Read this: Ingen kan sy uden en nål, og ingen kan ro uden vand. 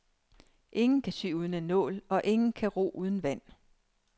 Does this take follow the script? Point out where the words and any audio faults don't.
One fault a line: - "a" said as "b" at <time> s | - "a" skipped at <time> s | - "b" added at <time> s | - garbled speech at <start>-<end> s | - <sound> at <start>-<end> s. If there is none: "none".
none